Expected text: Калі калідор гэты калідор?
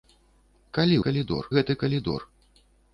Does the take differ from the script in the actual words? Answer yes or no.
no